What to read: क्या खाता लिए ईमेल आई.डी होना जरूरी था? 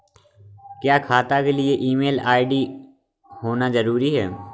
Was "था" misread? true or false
true